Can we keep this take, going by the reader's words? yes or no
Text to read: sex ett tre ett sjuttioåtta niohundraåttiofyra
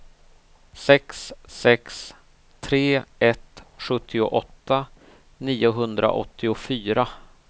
no